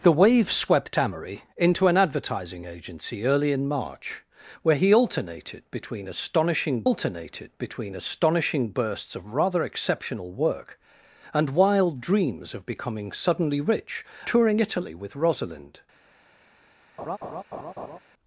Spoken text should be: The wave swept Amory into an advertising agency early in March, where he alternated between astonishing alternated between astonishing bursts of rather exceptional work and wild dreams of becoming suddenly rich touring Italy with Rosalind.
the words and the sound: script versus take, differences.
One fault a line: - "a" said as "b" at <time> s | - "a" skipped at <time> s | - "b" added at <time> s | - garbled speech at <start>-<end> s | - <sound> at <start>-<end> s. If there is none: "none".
- laugh at 17.0-18.0 s